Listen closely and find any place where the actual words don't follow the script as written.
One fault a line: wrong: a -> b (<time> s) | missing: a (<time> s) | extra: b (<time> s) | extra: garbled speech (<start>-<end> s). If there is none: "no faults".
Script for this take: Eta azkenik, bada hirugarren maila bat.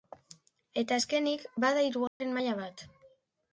no faults